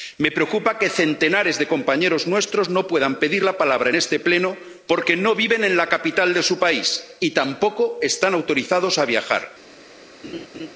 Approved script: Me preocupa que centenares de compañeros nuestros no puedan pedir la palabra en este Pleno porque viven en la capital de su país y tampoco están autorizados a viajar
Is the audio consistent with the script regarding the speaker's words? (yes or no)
no